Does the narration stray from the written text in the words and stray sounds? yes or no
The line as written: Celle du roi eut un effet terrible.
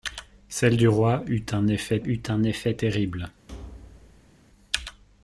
yes